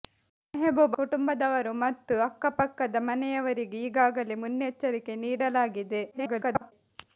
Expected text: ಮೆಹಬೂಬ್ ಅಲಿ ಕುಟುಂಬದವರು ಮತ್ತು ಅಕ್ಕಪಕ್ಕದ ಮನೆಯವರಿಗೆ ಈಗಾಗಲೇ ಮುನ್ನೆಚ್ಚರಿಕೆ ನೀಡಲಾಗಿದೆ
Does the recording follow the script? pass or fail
fail